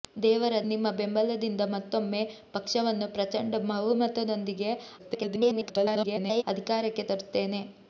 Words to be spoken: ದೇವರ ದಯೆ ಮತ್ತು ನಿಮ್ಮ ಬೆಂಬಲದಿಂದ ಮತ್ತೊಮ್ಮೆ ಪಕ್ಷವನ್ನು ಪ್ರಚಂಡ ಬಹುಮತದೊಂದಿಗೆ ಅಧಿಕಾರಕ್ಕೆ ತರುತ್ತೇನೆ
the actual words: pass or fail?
fail